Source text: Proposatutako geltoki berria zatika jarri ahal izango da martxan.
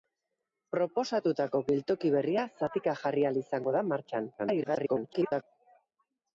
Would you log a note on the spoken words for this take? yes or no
yes